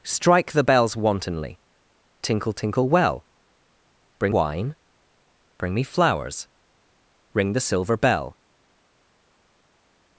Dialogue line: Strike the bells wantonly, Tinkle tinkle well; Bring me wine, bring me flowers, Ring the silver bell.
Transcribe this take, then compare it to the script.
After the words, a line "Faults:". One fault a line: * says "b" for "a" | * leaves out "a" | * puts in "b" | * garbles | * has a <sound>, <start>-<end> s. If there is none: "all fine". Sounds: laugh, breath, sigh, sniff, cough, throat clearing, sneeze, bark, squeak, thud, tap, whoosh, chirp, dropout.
Strike the bells wantonly, Tinkle tinkle well; Bring wine, bring me flowers, Ring the silver bell.
Faults:
* leaves out "me"